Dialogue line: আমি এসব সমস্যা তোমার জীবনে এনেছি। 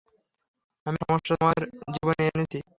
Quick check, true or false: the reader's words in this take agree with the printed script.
false